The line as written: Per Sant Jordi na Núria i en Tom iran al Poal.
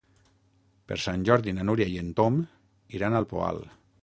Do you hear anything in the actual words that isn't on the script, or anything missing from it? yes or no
no